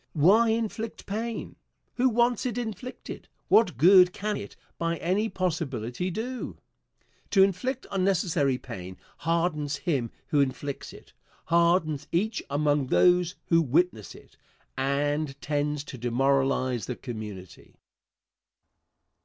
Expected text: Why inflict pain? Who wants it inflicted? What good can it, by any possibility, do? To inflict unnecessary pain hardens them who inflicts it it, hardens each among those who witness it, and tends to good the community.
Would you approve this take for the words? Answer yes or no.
no